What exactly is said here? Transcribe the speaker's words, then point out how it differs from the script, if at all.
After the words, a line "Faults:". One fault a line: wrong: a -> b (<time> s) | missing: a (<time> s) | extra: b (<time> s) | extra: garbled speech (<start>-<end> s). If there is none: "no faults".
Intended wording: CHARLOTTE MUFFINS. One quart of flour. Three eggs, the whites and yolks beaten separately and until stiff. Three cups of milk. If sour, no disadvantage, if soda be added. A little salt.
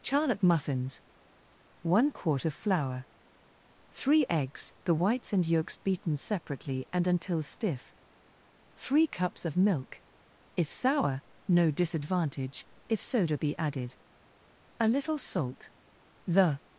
CHARLOTTE MUFFINS. One quart of flour. Three eggs, the whites and yolks beaten separately and until stiff. Three cups of milk. If sour, no disadvantage, if soda be added. A little salt. The
Faults:
extra: The (16.3 s)